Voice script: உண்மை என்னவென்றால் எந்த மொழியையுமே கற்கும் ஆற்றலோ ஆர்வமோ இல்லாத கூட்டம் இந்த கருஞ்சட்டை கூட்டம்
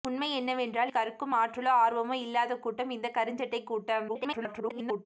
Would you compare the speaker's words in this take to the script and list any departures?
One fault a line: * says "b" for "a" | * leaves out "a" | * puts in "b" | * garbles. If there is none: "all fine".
* leaves out "எந்த மொழியையுமே"
* garbles